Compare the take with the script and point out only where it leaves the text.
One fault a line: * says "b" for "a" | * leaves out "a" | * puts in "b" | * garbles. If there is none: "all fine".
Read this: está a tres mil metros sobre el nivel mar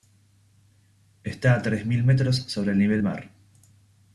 all fine